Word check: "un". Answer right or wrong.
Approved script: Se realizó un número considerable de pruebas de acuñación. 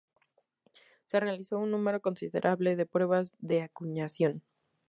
right